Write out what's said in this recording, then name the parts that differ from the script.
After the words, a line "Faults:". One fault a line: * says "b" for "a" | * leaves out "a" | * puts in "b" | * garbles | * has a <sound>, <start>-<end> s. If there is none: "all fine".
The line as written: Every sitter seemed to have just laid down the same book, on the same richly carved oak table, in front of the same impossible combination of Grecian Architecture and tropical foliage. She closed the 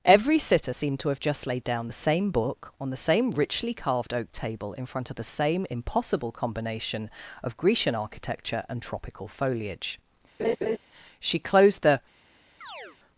Every sitter seemed to have just laid down the same book, on the same richly carved oak table, in front of the same impossible combination of Grecian Architecture and tropical foliage. She closed the
Faults:
* has a laugh, 10.4-10.8 s
* has a chirp, 12.6-13.0 s